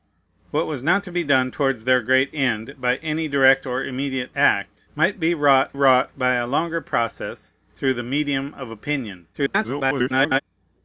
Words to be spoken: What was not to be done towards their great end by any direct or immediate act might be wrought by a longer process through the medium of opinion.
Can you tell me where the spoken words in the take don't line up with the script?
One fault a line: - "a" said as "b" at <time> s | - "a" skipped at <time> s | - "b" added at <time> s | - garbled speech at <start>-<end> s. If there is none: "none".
- "wrought" added at 5.7 s
- garbled speech at 9.3-10.4 s